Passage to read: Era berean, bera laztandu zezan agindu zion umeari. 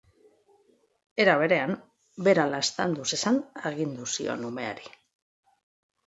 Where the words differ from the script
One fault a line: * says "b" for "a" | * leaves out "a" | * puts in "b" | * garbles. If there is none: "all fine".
all fine